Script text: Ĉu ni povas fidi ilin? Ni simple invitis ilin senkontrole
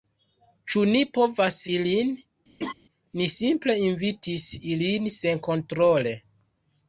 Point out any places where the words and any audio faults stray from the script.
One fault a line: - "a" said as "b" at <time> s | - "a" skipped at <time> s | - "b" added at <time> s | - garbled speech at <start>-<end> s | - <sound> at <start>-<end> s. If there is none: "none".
- "fidi" skipped at 1.6 s
- laugh at 2.6-2.7 s